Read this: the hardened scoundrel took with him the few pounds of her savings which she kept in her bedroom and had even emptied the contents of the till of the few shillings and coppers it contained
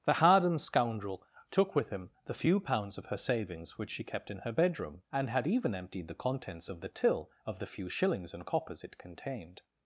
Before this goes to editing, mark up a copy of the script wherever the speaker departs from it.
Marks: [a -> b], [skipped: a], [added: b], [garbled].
the hardened scoundrel took with him the few pounds of her savings which she kept in her bedroom and had even emptied the contents of the till of the few shillings and coppers it contained